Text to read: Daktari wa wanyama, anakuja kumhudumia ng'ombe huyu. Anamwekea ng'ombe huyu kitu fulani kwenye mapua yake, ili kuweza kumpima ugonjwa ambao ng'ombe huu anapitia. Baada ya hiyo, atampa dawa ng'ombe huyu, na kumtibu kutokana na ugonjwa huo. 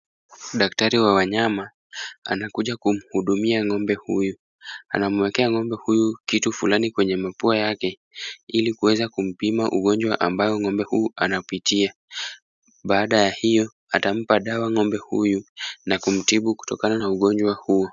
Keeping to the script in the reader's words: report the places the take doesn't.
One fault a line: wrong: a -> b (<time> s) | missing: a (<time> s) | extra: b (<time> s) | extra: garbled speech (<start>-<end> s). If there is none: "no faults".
no faults